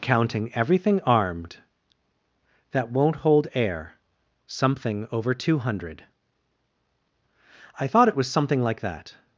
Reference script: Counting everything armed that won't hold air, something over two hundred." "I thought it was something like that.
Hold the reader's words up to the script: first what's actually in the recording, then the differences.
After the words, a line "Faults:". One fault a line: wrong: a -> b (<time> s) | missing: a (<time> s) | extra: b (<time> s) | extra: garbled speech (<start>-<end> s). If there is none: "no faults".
Counting everything armed that won't hold air, something over two hundred." "I thought it was something like that.
Faults:
no faults